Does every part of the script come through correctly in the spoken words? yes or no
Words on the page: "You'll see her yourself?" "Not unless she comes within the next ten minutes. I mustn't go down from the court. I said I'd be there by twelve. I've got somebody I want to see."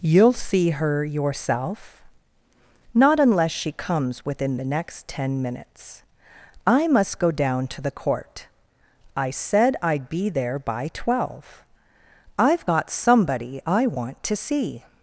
no